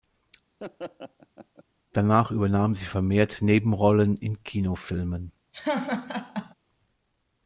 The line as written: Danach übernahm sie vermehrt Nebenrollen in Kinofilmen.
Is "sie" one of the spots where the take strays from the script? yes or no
no